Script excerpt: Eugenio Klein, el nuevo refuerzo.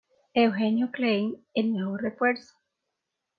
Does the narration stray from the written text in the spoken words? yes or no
no